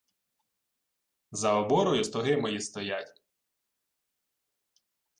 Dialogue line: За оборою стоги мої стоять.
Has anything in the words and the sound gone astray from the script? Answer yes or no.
no